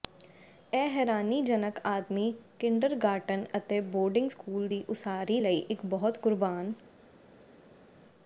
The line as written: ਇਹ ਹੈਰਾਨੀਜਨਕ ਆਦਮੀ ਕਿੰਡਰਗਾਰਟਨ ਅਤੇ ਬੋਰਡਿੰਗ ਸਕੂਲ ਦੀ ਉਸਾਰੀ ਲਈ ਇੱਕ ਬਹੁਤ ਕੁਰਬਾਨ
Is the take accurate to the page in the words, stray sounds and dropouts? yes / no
yes